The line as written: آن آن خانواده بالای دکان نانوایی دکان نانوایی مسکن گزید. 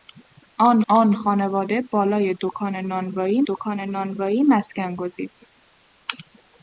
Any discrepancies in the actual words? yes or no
no